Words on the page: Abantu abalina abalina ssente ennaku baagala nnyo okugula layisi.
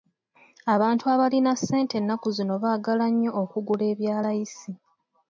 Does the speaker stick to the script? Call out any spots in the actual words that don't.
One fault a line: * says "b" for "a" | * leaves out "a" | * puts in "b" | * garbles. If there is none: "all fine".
* leaves out "abalina"
* puts in "zino"
* puts in "ebya"